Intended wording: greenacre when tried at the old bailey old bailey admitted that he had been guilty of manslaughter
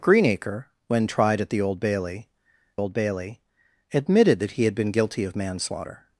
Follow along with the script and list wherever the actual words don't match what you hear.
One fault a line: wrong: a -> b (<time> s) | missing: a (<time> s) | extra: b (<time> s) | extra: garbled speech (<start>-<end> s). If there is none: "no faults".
no faults